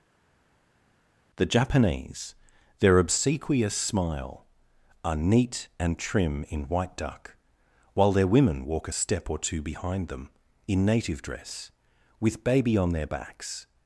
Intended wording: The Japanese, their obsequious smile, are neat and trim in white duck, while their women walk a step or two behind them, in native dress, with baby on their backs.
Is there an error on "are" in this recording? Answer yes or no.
no